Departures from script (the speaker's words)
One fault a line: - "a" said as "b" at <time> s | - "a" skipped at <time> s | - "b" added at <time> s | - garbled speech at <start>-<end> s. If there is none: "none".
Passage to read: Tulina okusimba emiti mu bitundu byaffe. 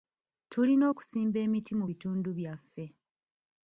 none